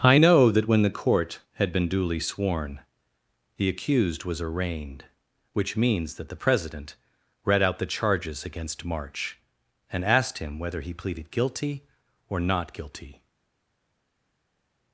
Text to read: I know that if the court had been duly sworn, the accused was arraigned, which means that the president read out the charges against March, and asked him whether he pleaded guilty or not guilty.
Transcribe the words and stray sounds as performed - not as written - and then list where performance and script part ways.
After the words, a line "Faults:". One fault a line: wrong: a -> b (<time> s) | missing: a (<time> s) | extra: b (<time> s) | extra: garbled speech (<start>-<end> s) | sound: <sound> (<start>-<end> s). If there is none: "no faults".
I know that when the court had been duly sworn, the accused was arraigned, which means that the president read out the charges against March, and asked him whether he pleaded guilty or not guilty.
Faults:
wrong: if -> when (0.7 s)